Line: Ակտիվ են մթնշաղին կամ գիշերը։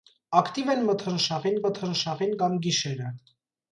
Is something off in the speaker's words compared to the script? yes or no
yes